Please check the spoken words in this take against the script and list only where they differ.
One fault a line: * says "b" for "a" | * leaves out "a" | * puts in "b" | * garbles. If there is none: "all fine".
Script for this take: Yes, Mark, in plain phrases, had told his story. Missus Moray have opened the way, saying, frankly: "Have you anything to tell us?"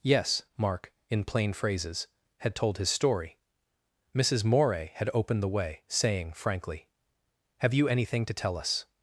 * says "had" for "have"